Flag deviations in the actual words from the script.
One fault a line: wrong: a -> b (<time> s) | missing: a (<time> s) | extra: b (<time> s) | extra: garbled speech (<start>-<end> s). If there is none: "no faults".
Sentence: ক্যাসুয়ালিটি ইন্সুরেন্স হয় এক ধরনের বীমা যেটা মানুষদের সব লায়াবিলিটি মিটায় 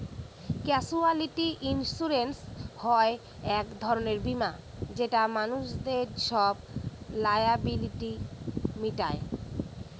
no faults